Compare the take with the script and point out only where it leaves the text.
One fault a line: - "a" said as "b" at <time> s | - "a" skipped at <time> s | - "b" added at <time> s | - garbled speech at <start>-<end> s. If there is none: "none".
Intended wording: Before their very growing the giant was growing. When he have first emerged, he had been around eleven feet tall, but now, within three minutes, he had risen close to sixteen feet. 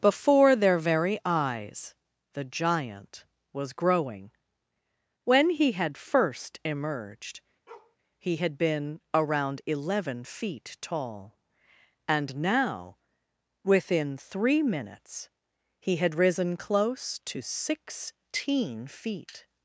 - "growing" said as "eyes" at 1.2 s
- "have" said as "had" at 5.7 s
- "but" said as "and" at 12.1 s